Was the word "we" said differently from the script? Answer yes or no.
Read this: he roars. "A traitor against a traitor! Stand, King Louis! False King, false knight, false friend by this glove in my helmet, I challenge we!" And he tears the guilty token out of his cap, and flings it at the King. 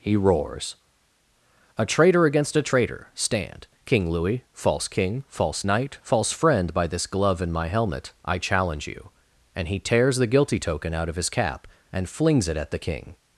yes